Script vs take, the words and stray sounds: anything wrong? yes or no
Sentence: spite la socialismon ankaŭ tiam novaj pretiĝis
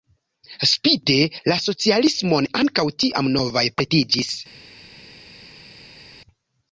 no